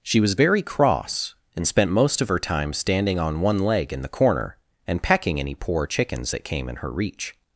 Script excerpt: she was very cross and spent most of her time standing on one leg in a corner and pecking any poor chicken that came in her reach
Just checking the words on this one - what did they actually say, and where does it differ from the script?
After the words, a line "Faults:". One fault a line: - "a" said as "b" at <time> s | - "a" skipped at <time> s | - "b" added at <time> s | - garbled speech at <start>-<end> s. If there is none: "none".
she was very cross and spent most of her time standing on one leg in the corner and pecking any poor chickens that came in her reach
Faults:
- "a" said as "the" at 4.0 s
- "chicken" said as "chickens" at 5.8 s